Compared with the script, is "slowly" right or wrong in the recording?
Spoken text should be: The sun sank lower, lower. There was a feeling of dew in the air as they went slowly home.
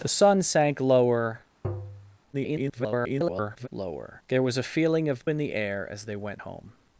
wrong